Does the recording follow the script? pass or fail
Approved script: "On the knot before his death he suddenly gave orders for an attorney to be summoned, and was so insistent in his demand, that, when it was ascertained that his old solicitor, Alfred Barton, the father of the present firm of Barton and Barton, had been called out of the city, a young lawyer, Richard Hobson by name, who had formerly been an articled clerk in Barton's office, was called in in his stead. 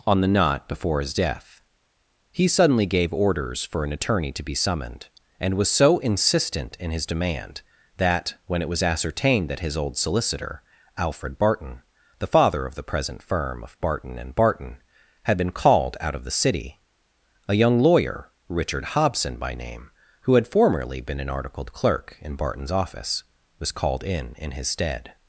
pass